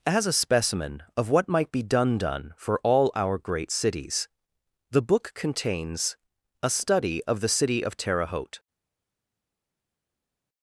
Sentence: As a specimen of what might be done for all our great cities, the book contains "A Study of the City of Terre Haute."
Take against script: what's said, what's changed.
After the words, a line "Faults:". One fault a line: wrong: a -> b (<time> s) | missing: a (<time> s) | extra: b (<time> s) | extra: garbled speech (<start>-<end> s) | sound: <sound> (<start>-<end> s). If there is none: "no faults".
As a specimen of what might be done done for all our great cities, the book contains "A Study of the City of Terre Haute."
Faults:
extra: done (2.2 s)